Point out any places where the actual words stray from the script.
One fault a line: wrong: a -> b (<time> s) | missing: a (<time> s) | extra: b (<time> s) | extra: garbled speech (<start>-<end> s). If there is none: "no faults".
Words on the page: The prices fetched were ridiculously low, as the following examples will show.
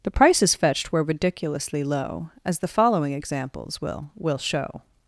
extra: will (4.2 s)